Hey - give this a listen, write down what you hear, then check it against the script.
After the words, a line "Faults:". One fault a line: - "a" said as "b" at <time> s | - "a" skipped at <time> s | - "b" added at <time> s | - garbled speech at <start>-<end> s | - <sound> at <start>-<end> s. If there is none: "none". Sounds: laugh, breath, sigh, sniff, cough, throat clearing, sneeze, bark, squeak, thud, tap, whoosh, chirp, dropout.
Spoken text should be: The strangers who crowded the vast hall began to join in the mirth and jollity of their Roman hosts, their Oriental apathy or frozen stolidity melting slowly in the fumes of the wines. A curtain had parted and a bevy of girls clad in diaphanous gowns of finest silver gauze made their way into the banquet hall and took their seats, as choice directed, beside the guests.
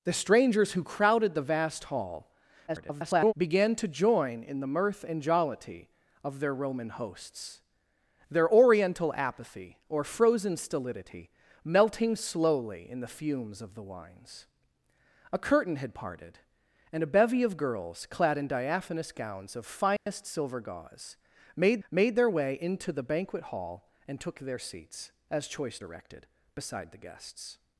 The strangers who crowded the vast hall [garbled] began to join in the mirth and jollity of their Roman hosts, their Oriental apathy or frozen stolidity melting slowly in the fumes of the wines. A curtain had parted and a bevy of girls clad in diaphanous gowns of finest silver gauze made made their way into the banquet hall and took their seats, as choice directed, beside the guests.
Faults:
- garbled speech at 2.7-3.3 s
- dropout at 20.0-20.1 s
- "made" added at 21.9 s